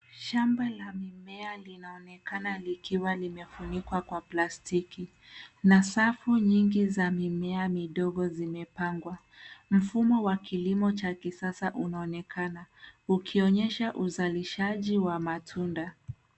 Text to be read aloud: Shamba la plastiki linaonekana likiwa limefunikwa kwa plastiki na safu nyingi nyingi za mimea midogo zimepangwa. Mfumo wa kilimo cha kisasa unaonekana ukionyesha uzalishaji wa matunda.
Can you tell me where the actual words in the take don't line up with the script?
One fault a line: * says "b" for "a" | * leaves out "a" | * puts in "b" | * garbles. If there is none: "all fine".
* says "mimea" for "plastiki"
* leaves out "nyingi"